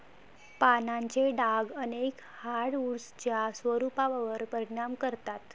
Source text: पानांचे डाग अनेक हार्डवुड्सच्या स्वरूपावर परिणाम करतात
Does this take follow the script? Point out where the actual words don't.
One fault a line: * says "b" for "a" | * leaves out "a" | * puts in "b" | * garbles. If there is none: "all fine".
all fine